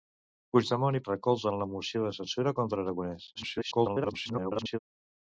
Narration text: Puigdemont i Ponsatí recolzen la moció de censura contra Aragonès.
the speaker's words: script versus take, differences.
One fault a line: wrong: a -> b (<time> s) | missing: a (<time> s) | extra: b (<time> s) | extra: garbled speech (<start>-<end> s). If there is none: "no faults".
missing: Ponsatí (1.0 s)
extra: garbled speech (3.4-4.8 s)